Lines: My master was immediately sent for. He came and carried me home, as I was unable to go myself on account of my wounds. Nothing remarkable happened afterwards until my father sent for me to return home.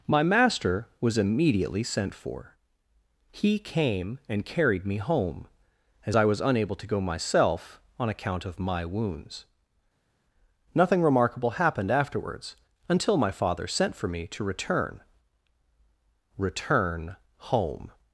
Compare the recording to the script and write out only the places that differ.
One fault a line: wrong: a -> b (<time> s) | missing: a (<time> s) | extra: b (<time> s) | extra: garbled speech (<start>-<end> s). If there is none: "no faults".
extra: return (16.4 s)